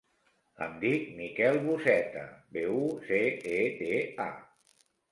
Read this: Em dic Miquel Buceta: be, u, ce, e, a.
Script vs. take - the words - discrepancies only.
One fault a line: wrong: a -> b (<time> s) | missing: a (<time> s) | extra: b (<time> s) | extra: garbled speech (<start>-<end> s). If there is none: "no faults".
extra: te (3.8 s)